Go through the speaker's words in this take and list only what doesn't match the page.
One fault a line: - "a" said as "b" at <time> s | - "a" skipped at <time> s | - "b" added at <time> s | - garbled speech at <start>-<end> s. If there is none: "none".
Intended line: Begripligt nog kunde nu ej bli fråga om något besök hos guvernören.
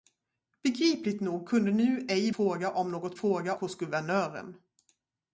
- "bli" skipped at 2.3 s
- "besök" said as "fråga" at 3.1 s